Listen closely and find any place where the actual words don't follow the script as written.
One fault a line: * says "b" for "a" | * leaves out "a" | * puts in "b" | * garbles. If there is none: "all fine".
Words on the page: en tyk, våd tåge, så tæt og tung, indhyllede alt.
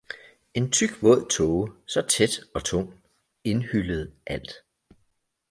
all fine